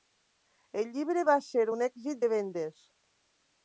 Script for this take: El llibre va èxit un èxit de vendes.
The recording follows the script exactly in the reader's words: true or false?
false